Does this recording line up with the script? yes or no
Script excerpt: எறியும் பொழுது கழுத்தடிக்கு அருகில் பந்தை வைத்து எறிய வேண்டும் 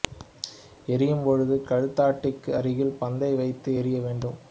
yes